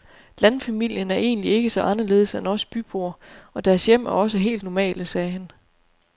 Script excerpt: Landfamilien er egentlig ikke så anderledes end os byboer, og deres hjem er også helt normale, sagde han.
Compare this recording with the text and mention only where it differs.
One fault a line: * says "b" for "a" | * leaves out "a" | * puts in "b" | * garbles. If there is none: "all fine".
all fine